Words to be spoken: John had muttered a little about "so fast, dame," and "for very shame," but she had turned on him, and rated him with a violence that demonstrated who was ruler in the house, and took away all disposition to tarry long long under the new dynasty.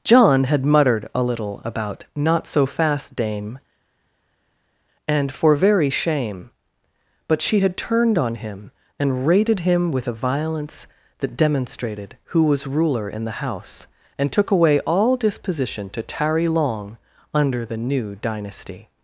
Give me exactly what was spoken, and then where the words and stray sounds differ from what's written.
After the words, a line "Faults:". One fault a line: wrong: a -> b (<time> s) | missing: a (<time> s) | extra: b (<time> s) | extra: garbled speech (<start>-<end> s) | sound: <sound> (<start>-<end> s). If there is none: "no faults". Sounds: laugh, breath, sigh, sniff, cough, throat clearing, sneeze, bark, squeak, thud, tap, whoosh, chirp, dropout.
John had muttered a little about "not so fast, dame," and "for very shame," but she had turned on him, and rated him with a violence that demonstrated who was ruler in the house, and took away all disposition to tarry long under the new dynasty.
Faults:
extra: not (2.1 s)
missing: long (17.0 s)